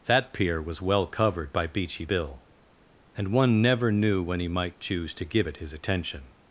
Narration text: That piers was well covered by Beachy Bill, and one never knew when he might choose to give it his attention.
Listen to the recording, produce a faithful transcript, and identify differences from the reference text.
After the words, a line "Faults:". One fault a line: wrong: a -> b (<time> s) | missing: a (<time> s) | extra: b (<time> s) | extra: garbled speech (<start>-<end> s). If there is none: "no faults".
That pier was well covered by Beachy Bill, and one never knew when he might choose to give it his attention.
Faults:
wrong: piers -> pier (0.3 s)